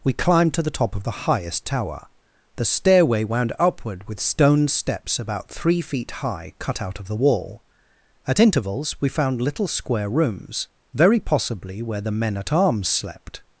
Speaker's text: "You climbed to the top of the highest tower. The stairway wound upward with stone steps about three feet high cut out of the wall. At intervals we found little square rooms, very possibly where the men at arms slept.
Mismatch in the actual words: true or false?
true